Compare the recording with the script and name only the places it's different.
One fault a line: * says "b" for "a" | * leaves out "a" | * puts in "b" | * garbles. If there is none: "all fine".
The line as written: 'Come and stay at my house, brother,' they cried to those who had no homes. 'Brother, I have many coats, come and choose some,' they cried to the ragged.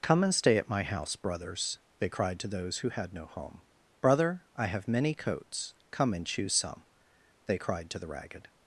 * says "brothers" for "brother"
* says "home" for "homes"